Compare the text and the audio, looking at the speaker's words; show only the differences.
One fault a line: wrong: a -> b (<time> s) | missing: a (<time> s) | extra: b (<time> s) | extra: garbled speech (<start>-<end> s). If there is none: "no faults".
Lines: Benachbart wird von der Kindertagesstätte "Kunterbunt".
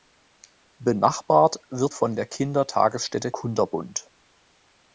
no faults